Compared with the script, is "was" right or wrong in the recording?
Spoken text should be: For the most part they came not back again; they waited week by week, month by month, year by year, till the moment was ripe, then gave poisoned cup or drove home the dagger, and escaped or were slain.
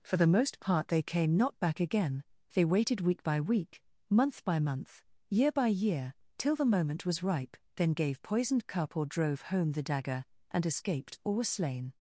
right